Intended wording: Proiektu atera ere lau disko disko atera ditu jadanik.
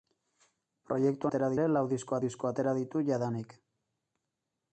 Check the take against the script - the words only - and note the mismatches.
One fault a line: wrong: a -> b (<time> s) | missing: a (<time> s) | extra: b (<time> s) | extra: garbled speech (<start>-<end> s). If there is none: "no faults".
no faults